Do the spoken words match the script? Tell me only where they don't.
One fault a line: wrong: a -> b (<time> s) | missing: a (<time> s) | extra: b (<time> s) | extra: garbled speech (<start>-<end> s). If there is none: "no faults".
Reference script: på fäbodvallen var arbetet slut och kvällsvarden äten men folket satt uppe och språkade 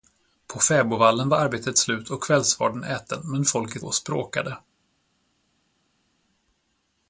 missing: satt uppe (3.9 s)